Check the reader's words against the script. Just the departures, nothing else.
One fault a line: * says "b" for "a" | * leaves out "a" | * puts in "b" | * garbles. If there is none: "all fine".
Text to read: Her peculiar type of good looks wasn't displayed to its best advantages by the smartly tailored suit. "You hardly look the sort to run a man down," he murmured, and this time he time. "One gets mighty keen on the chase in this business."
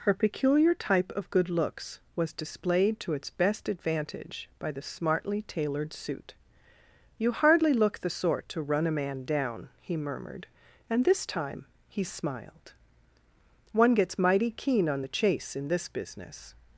* says "was" for "wasn't"
* says "advantage" for "advantages"
* says "smiled" for "time"